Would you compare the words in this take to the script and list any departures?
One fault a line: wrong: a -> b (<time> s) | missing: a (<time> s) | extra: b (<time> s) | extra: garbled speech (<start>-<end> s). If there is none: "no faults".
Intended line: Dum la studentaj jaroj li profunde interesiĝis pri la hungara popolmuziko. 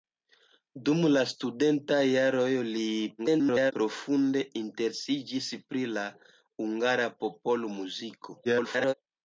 extra: garbled speech (3.2-3.7 s)
extra: garbled speech (8.4-8.9 s)